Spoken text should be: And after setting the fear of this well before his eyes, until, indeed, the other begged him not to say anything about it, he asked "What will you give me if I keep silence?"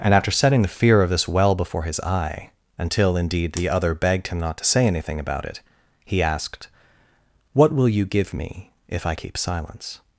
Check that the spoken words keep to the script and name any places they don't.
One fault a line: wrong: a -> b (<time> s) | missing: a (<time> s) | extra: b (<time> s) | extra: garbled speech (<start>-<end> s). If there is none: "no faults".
wrong: eyes -> eye (2.0 s)